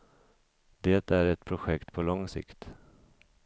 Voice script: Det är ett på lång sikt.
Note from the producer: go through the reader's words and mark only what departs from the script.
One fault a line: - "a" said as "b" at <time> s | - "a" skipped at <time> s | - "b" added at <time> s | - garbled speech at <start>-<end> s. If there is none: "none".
- "projekt" added at 1.4 s